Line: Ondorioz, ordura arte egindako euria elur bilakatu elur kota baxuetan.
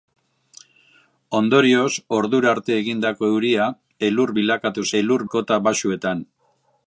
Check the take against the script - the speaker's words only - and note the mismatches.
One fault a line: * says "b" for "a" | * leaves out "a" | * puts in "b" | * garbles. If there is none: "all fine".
all fine